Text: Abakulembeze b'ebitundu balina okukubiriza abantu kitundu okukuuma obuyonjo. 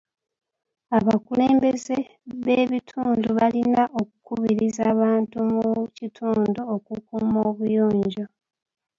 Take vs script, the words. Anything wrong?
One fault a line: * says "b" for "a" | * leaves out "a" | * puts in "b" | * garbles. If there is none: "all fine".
* puts in "mu"